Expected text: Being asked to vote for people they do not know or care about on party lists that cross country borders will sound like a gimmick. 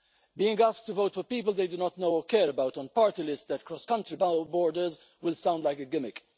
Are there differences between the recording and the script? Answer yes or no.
no